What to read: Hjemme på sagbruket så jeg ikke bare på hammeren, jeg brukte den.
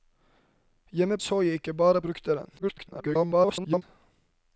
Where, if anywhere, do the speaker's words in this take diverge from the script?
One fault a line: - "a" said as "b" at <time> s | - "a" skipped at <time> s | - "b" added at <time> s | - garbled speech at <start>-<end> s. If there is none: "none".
- "på sagbruket" skipped at 1.2 s
- "på hammeren jeg" skipped at 2.0 s
- garbled speech at 2.6-3.8 s